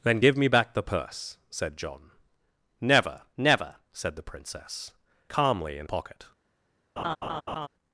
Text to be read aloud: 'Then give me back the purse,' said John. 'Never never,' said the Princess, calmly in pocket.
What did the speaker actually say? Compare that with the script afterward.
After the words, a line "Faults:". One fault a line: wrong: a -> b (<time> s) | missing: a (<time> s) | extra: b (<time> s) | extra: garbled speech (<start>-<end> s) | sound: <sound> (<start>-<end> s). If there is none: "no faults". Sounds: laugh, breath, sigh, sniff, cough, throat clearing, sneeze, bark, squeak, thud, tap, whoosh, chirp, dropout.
'Then give me back the purse,' said John. 'Never never,' said the Princess, calmly in pocket.
Faults:
sound: laugh (7.0-7.7 s)